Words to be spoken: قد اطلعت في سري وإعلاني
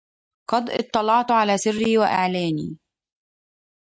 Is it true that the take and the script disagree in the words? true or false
true